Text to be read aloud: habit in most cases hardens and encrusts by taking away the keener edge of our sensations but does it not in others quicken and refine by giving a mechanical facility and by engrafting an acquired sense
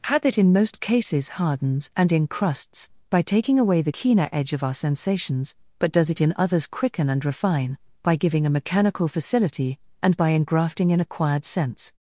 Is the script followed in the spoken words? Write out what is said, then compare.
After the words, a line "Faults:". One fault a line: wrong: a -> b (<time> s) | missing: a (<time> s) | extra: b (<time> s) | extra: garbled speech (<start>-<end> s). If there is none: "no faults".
habit in most cases hardens and encrusts by taking away the keener edge of our sensations but does it in others quicken and refine by giving a mechanical facility and by engrafting an acquired sense
Faults:
missing: not (6.2 s)